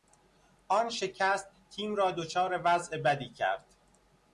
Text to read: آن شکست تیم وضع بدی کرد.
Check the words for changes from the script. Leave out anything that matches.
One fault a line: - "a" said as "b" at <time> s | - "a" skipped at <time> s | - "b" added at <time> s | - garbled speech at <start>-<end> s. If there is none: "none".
- "را دچار" added at 1.9 s